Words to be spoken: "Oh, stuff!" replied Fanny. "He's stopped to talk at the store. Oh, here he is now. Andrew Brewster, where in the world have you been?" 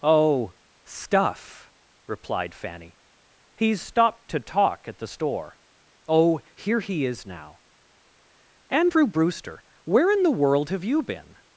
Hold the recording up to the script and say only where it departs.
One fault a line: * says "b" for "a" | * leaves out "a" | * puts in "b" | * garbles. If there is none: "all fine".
all fine